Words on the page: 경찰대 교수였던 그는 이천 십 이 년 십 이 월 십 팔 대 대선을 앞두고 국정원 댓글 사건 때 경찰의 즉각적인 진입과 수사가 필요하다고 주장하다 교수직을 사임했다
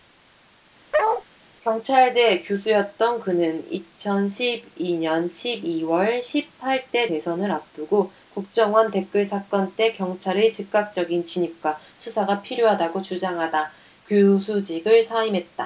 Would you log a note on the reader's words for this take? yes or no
no